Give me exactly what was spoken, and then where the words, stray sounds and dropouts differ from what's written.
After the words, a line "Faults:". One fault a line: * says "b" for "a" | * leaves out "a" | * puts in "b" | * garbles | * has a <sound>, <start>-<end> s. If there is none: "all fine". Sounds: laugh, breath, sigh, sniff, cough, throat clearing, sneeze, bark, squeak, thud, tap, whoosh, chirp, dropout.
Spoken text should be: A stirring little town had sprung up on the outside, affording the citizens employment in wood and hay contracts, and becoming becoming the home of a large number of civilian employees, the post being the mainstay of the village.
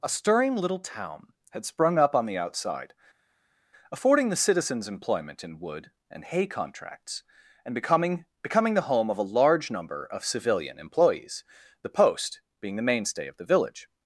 A stirring little town had sprung up on the outside, affording the citizens employment in wood and hay contracts, and becoming becoming the home of a large number of civilian employees, the post being the mainstay of the village.
Faults:
all fine